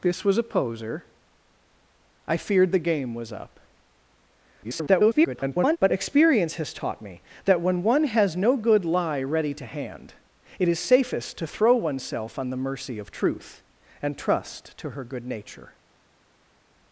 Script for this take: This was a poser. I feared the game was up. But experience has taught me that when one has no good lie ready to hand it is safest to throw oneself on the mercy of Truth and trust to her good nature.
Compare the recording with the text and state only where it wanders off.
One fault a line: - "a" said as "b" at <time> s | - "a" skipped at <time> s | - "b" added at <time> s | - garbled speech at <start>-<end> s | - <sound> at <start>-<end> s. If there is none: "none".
- garbled speech at 4.6-5.8 s